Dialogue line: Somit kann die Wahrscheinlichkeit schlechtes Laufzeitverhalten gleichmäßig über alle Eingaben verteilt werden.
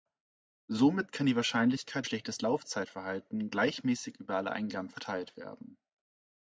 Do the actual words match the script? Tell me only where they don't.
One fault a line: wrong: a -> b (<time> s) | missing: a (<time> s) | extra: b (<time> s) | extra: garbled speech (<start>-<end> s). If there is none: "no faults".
no faults